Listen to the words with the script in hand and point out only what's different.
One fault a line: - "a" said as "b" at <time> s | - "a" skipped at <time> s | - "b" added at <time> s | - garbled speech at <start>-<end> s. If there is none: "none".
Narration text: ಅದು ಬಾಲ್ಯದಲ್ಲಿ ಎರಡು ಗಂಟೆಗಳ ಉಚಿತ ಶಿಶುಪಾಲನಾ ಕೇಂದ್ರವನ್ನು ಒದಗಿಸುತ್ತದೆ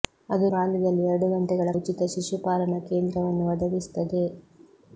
none